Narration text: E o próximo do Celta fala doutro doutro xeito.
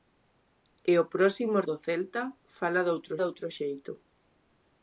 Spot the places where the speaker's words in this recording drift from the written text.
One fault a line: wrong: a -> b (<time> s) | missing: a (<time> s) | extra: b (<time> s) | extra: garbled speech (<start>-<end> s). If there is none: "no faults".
no faults